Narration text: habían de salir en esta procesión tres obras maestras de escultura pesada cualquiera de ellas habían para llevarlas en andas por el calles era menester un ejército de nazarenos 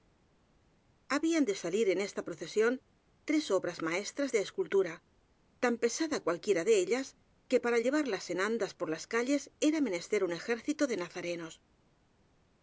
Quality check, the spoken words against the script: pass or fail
fail